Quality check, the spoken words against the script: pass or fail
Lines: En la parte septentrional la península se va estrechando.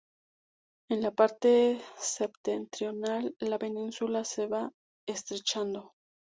pass